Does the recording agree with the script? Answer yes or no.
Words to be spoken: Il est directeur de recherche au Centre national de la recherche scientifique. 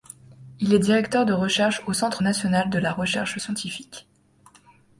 yes